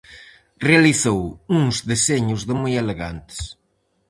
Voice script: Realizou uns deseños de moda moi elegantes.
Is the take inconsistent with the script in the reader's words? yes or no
yes